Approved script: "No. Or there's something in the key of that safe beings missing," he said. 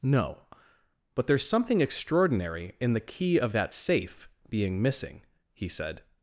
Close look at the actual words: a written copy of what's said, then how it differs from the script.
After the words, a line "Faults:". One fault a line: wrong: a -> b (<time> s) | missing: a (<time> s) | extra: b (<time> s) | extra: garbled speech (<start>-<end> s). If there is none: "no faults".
"No. But there's something extraordinary in the key of that safe being missing," he said.
Faults:
wrong: Or -> But (1.1 s)
extra: extraordinary (1.8 s)
wrong: beings -> being (4.5 s)